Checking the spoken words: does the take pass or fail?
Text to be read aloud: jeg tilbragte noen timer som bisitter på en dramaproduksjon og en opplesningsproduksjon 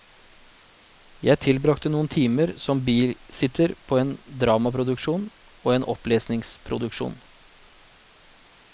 pass